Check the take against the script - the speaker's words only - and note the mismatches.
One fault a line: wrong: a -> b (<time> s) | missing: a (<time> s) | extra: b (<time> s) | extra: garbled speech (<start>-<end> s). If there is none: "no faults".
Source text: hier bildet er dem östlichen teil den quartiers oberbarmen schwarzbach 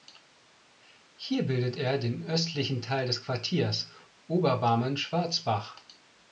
wrong: dem -> den (2.0 s)
wrong: den -> des (3.0 s)